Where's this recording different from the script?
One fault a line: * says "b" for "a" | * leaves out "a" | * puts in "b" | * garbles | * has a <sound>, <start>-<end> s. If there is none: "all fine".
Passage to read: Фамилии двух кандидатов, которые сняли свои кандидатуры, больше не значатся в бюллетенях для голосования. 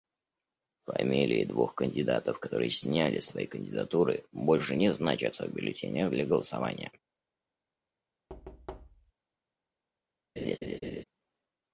* has a thud, 8.3-9.1 s
* has a laugh, 10.4-11.0 s